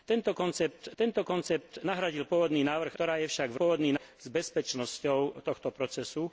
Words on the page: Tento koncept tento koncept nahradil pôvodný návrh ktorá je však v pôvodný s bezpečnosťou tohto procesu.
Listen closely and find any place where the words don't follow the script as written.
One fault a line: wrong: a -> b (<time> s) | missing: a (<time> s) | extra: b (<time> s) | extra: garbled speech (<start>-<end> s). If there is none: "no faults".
no faults